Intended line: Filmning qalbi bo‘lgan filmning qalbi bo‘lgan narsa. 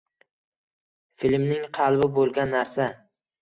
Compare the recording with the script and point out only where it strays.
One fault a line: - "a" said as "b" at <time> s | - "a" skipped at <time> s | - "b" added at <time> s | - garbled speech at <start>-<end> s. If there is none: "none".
- "filmning qalbi bo‘lgan" skipped at 2.6 s